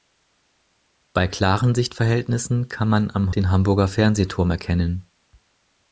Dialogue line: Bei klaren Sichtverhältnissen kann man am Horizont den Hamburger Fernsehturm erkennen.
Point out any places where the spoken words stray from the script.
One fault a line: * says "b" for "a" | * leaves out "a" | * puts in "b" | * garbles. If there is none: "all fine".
* leaves out "Horizont"